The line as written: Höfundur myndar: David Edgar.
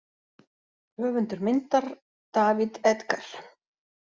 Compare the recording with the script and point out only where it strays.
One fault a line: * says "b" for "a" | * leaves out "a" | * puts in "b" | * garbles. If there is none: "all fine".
all fine